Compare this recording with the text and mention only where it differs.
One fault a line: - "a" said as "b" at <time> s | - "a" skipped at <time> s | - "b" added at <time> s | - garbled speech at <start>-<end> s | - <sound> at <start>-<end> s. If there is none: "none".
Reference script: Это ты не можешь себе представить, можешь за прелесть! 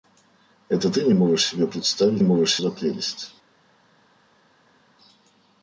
none